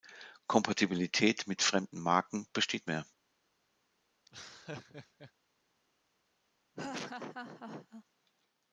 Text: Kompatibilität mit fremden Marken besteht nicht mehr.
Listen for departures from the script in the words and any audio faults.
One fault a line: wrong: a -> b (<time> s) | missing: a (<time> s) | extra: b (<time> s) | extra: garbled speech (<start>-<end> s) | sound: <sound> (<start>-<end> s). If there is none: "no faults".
missing: nicht (2.9 s)
sound: laugh (4.2-5.3 s)
sound: laugh (6.7-8.0 s)